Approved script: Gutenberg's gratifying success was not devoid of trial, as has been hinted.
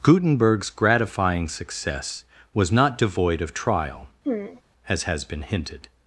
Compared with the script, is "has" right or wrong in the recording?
right